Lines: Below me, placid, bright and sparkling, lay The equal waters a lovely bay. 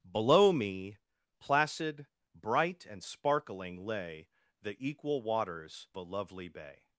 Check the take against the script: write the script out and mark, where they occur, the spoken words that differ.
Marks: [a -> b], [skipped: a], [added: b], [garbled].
Below me, placid, bright and sparkling, lay The equal waters a lovely bay.